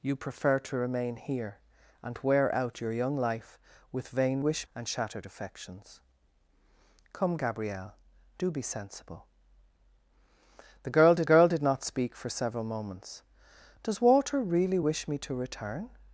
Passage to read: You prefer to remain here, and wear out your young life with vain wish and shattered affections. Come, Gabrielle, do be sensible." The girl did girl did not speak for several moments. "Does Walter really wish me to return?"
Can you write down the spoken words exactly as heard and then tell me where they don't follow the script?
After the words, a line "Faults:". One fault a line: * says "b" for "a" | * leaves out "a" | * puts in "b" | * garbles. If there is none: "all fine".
You prefer to remain here, and wear out your young life with vain wish and shattered affections. Come, Gabrielle, do be sensible." The girl did girl did not speak for several moments. "Does Walter really wish me to return?"
Faults:
all fine